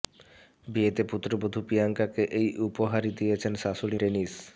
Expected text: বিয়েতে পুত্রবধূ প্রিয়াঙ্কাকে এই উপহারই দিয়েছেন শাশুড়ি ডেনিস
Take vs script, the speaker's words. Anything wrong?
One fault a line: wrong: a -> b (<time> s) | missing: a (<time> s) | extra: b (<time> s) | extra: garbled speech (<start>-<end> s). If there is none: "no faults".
no faults